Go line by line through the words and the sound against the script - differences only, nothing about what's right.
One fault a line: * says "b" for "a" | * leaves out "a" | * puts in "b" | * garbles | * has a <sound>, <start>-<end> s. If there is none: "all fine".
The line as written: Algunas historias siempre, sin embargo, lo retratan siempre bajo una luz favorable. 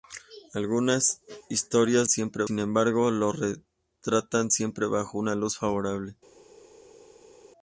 all fine